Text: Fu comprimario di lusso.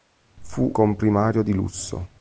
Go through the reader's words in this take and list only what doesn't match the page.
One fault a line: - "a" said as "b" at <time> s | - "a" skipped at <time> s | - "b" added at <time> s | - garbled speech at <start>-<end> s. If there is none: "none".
none